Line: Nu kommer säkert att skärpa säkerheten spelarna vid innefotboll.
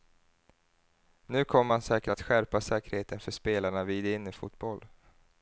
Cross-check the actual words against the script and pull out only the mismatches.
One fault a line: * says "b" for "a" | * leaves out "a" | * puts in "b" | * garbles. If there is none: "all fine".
* puts in "man"
* puts in "för"